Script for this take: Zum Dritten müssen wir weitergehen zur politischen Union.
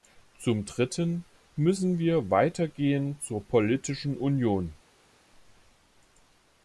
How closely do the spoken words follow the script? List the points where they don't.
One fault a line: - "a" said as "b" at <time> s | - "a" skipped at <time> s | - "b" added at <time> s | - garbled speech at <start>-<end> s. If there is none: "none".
none